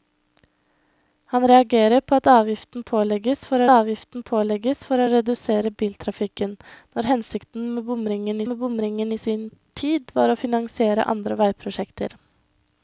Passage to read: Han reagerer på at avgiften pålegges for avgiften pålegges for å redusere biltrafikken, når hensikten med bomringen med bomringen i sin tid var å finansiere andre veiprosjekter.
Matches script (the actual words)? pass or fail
pass